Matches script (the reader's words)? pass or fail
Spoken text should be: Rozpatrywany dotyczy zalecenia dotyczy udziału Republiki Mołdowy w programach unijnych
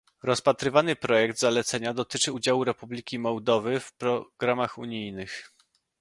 fail